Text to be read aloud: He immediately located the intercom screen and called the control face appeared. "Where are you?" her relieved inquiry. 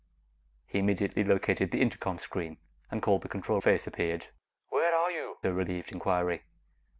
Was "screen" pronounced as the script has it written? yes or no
yes